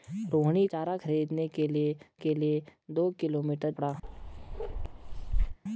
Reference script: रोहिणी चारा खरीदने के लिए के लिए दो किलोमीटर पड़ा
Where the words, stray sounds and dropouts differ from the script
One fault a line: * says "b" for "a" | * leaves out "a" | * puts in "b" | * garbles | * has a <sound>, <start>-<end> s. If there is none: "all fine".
* has a bark, 4.0-5.6 s